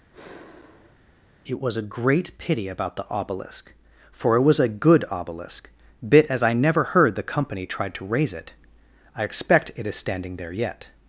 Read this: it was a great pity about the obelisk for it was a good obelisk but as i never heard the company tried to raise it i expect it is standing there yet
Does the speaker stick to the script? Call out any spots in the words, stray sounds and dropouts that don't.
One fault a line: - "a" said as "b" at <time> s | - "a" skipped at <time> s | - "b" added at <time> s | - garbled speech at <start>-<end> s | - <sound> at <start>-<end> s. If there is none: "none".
- sigh at 0.1-1.0 s
- "but" said as "bit" at 6.1 s